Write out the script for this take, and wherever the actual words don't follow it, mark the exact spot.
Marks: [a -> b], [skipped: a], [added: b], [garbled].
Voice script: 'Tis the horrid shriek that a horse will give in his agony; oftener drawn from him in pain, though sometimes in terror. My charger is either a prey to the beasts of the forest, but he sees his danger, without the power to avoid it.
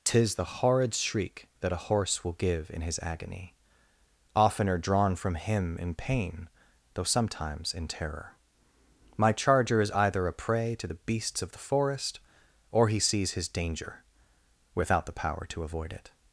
'Tis the horrid shriek that a horse will give in his agony; oftener drawn from him in pain, though sometimes in terror. My charger is either a prey to the beasts of the forest, [but -> or] he sees his danger, without the power to avoid it.